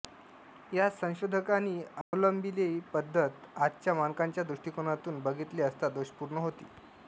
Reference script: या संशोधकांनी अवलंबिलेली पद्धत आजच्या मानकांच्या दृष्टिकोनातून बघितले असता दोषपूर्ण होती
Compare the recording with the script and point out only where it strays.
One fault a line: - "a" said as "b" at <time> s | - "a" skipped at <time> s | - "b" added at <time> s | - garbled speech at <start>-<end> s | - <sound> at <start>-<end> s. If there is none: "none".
- dropout at 2.0-2.1 s